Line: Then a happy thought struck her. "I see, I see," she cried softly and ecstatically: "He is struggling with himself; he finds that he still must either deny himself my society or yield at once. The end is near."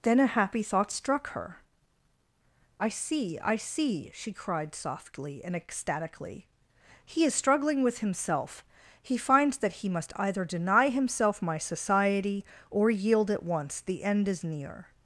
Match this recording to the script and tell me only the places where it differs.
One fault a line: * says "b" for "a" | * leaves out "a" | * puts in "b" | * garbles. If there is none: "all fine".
* leaves out "still"